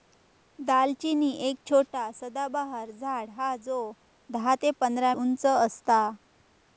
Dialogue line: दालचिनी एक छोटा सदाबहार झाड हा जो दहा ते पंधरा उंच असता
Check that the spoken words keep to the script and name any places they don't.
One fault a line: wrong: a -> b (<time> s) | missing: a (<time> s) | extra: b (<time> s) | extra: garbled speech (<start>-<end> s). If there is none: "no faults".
no faults